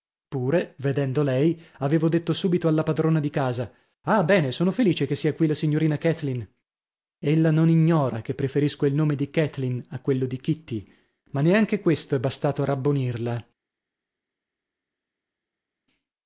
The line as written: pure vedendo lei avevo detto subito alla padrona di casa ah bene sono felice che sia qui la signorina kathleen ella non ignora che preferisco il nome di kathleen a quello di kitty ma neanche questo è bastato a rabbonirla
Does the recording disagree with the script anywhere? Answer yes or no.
no